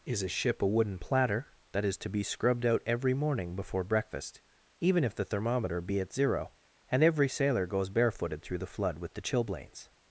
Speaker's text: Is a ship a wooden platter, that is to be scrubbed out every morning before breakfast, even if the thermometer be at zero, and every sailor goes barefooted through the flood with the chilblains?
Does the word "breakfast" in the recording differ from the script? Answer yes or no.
no